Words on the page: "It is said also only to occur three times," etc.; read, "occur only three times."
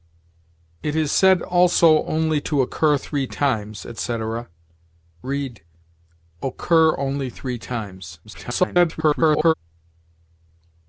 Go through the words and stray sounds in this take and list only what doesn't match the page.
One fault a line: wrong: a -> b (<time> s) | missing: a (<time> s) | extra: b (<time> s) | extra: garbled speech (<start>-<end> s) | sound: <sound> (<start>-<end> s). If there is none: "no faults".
extra: garbled speech (8.2-9.5 s)